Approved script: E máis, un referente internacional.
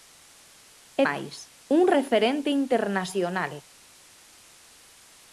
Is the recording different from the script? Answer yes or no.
no